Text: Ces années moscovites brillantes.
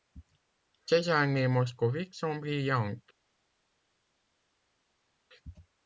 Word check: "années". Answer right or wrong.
right